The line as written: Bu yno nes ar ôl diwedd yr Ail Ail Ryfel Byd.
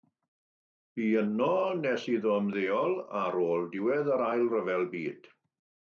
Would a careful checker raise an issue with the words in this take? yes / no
yes